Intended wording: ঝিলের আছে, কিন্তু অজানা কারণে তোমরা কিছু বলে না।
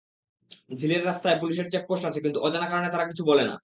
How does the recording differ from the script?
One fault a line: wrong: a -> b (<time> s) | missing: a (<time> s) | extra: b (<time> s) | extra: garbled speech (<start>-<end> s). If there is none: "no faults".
extra: রাস্তায় পুলিশের চেকপোস্ট (1.1 s)
wrong: তোমরা -> তারা (2.9 s)